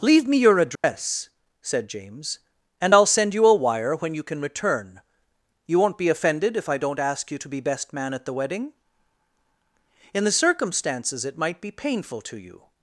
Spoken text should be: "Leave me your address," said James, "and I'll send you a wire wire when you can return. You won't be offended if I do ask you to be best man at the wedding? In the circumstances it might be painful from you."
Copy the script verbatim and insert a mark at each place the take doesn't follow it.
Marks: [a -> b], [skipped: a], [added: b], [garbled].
"Leave me your address," said James, "and I'll send you a wire [skipped: wire] when you can return. You won't be offended if I [do -> don't] ask you to be best man at the wedding? In the circumstances it might be painful [from -> to] you."